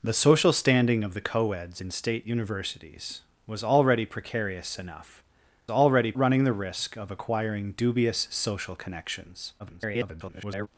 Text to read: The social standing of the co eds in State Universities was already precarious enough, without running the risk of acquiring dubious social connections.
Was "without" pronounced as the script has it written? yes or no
no